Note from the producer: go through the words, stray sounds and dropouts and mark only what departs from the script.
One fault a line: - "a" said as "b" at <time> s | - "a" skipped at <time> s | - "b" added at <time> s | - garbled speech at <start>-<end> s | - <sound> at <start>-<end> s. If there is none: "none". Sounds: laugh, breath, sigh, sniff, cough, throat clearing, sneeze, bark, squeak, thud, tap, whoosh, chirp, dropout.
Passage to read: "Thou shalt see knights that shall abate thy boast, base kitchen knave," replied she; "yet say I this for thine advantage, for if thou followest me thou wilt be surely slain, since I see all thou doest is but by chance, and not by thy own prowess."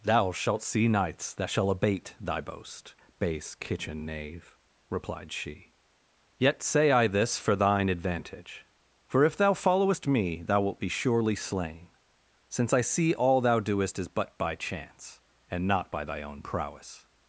none